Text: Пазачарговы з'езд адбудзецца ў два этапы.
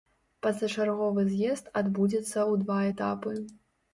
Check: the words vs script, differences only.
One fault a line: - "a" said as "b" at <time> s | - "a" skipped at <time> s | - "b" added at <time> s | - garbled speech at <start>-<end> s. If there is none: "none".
none